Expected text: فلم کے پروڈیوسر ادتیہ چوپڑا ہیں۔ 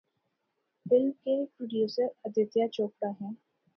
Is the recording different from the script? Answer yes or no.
no